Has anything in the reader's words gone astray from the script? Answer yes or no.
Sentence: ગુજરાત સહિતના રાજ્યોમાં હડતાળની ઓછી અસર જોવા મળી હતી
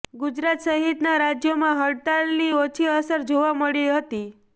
no